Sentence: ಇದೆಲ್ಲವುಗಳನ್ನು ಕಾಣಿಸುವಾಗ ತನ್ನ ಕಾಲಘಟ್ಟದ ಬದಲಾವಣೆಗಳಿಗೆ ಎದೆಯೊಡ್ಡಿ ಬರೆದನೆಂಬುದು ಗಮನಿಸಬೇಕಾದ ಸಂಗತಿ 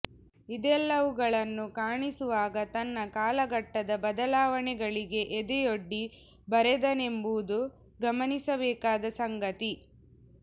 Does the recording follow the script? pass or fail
pass